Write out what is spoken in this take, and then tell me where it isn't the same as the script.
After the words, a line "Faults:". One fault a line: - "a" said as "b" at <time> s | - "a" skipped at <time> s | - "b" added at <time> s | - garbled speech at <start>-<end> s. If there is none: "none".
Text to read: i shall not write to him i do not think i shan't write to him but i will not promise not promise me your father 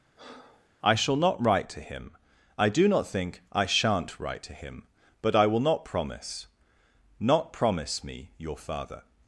i shall not write to him i do not think i shan't write to him but i will not promise not promise me your father
Faults:
none